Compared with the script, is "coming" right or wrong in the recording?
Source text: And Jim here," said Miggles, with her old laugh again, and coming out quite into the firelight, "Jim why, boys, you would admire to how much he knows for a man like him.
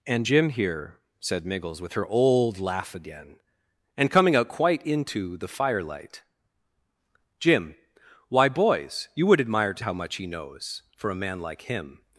right